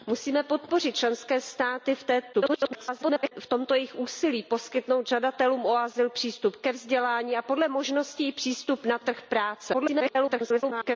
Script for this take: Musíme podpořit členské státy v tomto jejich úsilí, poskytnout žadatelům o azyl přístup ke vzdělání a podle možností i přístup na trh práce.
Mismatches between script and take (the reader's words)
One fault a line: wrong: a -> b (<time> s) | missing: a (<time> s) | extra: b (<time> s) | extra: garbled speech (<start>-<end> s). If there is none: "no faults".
extra: garbled speech (2.3-3.3 s)
extra: garbled speech (9.7-11.0 s)